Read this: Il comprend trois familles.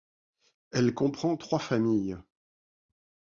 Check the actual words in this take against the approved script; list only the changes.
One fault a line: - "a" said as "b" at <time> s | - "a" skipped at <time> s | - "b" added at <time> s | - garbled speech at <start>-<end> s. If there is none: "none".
- "Il" said as "Elle" at 0.7 s